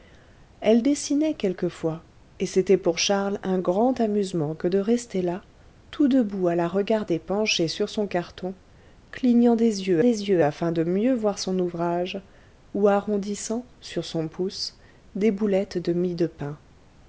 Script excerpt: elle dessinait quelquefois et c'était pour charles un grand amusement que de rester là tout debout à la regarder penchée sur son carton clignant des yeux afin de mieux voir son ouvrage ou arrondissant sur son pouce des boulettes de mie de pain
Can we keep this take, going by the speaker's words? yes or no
no